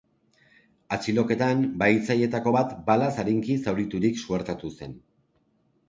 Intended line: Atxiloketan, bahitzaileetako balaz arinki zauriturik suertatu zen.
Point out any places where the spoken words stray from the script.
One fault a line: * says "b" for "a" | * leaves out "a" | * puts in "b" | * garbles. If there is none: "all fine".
* puts in "bat"